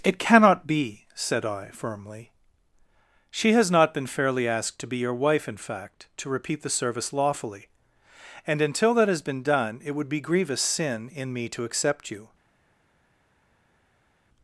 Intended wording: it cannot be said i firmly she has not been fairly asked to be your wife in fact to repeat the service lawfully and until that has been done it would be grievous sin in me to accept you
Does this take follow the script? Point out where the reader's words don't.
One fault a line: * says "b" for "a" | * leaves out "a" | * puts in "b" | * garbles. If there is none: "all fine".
all fine